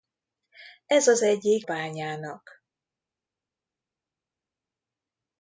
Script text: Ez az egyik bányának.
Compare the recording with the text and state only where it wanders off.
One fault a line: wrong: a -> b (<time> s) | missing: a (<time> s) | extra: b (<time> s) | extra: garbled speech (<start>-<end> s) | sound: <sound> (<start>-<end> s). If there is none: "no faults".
no faults